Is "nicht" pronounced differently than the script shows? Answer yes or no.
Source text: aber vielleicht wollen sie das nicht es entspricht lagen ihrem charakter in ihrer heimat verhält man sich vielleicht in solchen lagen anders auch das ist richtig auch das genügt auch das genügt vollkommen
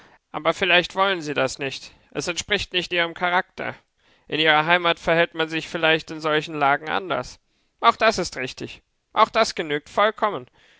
no